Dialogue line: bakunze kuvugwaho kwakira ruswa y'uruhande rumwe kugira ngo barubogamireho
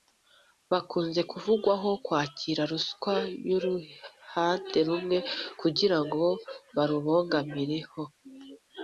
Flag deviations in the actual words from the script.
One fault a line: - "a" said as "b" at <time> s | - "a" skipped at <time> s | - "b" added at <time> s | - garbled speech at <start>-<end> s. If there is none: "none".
none